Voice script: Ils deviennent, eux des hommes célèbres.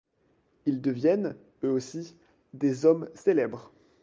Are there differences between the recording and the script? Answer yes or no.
yes